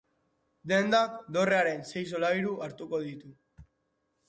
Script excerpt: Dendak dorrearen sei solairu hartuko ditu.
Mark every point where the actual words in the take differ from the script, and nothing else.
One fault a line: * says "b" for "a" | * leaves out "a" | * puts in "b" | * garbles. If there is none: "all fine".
all fine